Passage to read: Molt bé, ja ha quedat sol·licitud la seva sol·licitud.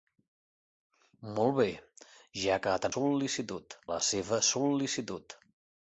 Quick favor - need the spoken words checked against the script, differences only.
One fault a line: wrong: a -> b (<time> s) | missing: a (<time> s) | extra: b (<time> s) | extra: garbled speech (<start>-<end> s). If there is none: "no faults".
no faults